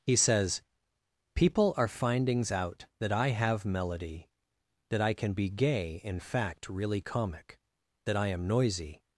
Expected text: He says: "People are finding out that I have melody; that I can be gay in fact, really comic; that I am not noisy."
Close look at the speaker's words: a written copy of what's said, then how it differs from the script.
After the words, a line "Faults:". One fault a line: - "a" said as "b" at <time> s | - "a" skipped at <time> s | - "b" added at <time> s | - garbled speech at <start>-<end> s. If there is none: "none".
He says: "People are findings out that I have melody; that I can be gay in fact, really comic; that I am noisy."
Faults:
- "finding" said as "findings" at 1.9 s
- "not" skipped at 8.5 s